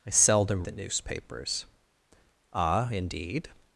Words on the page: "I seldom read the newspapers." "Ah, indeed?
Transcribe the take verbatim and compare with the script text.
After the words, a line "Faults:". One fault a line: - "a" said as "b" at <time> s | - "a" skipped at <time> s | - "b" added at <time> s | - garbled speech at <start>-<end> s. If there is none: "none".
"I seldom the newspapers." "Ah, indeed?
Faults:
- "read" skipped at 0.7 s